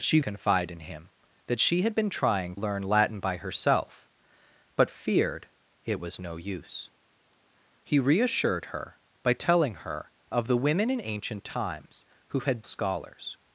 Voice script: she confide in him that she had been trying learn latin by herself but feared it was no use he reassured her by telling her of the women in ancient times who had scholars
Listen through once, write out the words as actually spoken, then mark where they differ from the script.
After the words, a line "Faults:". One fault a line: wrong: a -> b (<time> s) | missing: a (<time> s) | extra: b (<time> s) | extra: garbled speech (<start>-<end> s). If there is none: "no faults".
she confide in him that she had been trying learn latin by herself but feared it was no use he reassured her by telling her of the women in ancient times who had scholars
Faults:
no faults